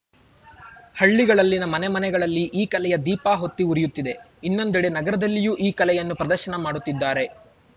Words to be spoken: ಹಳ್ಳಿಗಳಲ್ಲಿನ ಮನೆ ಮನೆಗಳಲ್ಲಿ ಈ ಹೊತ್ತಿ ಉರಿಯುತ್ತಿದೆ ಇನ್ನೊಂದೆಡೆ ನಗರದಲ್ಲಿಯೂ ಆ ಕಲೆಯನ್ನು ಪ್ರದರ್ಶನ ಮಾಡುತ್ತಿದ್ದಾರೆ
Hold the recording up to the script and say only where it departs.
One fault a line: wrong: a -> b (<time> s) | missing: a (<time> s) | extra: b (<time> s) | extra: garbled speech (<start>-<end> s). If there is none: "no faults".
extra: ಕಲೆಯ ದೀಪ (2.6 s)
wrong: ಆ -> ಈ (5.6 s)